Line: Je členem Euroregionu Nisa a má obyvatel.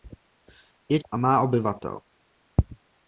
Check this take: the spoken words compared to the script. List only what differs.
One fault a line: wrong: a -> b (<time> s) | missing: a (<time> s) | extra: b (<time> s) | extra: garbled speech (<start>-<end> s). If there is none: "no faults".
missing: členem Euroregionu Nisa (1.0 s)